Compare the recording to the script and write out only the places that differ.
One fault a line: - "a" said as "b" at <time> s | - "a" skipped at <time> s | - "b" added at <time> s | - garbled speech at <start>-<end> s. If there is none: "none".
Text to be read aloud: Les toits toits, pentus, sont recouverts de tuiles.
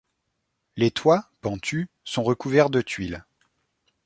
- "toits" skipped at 1.3 s